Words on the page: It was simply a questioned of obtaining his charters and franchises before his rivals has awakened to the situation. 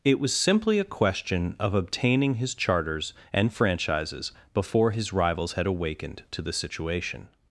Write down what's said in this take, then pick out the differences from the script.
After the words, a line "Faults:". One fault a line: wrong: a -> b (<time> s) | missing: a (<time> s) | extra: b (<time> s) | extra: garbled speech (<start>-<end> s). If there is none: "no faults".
It was simply a question of obtaining his charters and franchises before his rivals had awakened to the situation.
Faults:
wrong: questioned -> question (0.8 s)
wrong: has -> had (5.5 s)